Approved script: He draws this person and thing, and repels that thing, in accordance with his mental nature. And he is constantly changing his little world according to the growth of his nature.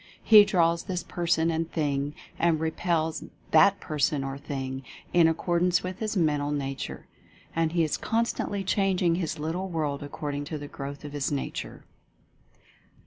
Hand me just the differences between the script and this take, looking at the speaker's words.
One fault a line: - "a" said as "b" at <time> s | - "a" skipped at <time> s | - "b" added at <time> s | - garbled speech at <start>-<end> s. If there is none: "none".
- "person or" added at 3.8 s